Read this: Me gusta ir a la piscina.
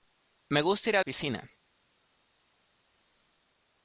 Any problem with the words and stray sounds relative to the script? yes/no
yes